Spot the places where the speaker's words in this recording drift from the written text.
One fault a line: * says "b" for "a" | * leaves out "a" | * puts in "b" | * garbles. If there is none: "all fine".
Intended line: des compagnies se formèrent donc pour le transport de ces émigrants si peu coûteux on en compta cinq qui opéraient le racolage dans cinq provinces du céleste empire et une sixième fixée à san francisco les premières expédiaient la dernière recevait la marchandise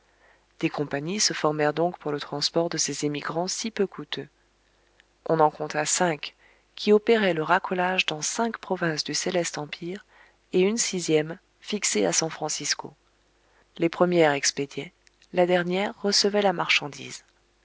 all fine